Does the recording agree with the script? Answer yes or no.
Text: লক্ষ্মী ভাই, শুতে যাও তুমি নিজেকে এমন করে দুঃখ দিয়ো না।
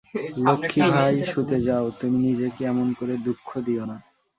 yes